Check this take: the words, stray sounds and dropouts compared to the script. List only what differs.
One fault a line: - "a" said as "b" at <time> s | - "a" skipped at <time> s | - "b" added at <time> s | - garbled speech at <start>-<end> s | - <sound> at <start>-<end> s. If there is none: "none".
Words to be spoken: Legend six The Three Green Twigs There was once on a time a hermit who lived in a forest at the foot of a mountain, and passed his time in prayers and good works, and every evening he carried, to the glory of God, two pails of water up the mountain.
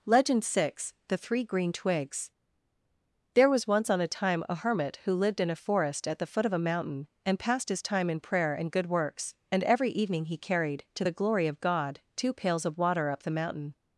- "prayers" said as "prayer" at 8.2 s